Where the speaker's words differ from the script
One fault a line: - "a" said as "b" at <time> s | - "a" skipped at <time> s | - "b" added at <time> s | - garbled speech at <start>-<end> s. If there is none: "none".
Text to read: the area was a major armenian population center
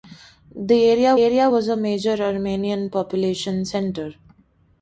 - "area" added at 1.2 s